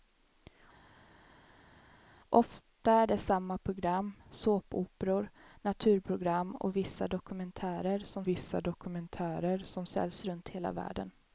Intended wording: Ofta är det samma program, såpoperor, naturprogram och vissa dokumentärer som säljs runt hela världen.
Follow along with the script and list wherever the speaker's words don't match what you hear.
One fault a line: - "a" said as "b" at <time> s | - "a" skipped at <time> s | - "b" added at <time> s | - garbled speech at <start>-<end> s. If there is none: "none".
- "vissa dokumentärer som" added at 8.3 s